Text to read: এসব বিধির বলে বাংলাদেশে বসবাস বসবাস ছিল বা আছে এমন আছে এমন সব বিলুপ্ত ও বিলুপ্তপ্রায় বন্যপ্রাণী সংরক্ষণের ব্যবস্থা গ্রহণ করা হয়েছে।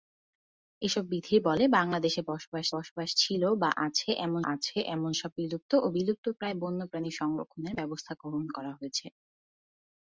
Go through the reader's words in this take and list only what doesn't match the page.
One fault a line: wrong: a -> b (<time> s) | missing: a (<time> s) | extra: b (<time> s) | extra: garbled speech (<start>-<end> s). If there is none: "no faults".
no faults